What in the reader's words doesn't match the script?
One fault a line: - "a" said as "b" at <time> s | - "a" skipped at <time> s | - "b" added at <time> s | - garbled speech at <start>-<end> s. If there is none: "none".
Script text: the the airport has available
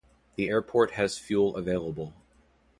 - "the" skipped at 0.5 s
- "fuel" added at 1.2 s